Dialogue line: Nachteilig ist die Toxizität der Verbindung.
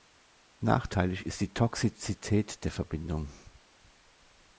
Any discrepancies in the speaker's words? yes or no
no